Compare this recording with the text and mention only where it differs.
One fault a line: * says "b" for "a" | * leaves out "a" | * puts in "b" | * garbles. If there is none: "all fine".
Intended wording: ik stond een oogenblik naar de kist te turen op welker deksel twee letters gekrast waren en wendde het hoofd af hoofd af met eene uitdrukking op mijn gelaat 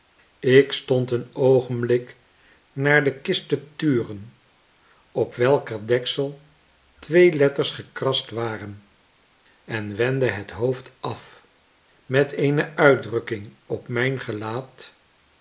* leaves out "hoofd af"